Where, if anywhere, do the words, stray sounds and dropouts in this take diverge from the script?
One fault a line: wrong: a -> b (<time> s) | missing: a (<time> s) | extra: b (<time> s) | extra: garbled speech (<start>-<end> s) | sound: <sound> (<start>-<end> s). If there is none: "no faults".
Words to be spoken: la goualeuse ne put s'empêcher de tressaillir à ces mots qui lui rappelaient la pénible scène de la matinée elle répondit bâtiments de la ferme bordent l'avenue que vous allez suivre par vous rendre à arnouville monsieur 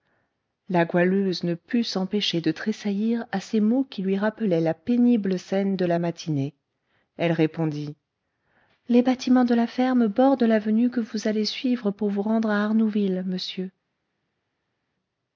extra: les (8.9 s)
wrong: par -> pour (11.9 s)